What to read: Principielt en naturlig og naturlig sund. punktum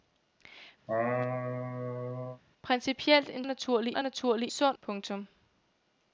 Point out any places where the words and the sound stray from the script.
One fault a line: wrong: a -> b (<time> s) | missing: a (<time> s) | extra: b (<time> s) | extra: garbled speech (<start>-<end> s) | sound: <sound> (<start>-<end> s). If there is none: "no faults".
sound: laugh (0.9-2.4 s)